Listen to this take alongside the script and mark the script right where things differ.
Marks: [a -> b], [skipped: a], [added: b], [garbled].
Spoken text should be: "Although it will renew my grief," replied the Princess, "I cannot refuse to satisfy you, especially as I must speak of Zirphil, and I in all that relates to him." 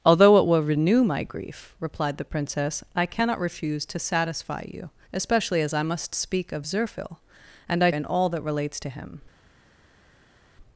"Although it will renew my grief," replied the Princess, "I cannot refuse to satisfy you, especially as I must speak of Zirphil, and I in all that relates to him."